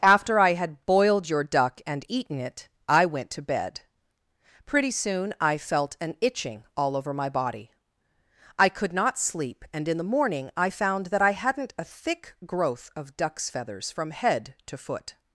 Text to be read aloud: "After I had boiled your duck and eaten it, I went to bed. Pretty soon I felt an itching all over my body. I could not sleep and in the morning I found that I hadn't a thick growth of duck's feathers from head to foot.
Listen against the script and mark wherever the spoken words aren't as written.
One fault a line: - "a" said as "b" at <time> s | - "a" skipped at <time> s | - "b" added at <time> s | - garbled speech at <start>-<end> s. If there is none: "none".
none